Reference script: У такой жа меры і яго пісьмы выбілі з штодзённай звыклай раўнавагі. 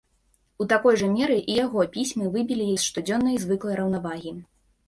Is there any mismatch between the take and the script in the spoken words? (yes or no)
no